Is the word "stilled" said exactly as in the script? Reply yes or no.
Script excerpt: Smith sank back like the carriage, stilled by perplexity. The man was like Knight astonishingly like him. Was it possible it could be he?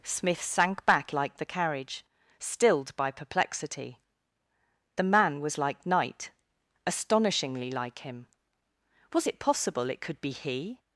yes